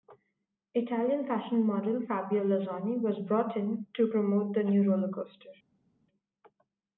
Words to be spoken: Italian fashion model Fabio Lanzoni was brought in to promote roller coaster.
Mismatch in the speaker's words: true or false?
true